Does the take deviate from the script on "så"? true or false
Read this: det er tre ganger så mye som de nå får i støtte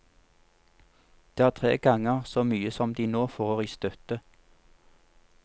false